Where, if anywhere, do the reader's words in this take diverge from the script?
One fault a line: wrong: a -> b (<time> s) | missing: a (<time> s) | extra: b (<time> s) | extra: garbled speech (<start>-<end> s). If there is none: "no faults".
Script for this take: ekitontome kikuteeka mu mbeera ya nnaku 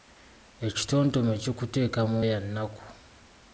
missing: mbeera (2.2 s)